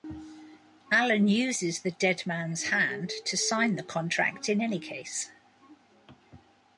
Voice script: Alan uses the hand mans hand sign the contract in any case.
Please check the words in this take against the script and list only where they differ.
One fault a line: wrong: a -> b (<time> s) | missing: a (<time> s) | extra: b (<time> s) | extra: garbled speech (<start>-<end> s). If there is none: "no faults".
wrong: hand -> dead (1.9 s)
extra: to (3.2 s)